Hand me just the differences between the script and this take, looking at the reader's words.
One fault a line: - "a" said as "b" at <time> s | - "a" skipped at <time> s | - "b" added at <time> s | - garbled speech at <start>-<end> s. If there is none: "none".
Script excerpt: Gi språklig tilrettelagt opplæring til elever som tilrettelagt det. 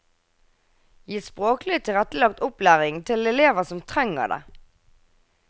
- "tilrettelagt" said as "trenger" at 3.9 s